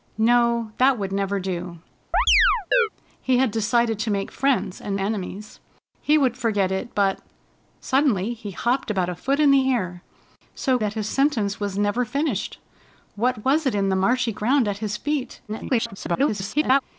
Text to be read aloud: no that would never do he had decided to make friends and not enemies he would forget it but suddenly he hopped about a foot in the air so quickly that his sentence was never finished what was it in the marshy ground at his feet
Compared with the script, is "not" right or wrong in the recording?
wrong